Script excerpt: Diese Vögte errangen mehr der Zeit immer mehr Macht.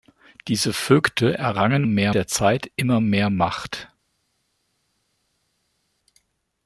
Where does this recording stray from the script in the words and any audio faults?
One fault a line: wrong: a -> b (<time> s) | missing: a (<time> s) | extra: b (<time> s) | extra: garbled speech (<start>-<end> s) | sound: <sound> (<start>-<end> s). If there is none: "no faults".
no faults